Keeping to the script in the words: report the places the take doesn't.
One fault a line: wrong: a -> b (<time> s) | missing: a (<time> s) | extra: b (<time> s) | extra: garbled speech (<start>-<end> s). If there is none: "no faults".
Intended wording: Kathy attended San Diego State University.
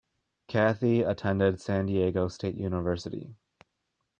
no faults